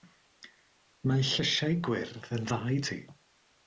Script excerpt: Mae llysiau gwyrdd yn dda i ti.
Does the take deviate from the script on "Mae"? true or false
false